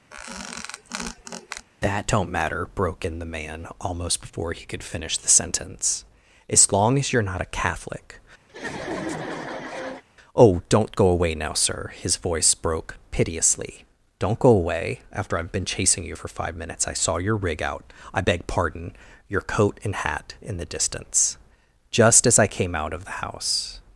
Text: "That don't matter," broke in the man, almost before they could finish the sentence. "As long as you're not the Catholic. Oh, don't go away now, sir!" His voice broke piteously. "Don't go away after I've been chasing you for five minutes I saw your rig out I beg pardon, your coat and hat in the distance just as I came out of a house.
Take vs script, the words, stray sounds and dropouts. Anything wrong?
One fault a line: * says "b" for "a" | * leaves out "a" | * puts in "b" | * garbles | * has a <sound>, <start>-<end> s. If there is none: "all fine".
* has a squeak, 0.1-1.7 s
* says "he" for "they"
* says "a" for "the"
* has a laugh, 8.5-10.0 s
* says "the" for "a"